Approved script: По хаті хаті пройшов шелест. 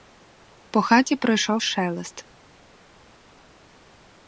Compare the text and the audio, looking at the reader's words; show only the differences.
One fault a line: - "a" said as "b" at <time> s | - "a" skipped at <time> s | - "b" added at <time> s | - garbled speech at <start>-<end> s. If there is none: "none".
- "хаті" skipped at 1.1 s